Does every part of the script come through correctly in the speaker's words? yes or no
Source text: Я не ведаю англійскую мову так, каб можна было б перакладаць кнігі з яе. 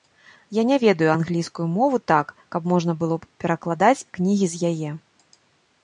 yes